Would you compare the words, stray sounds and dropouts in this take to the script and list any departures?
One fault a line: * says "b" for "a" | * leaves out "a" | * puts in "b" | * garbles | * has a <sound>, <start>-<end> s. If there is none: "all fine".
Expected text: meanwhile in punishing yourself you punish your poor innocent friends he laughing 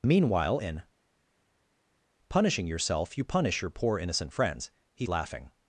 all fine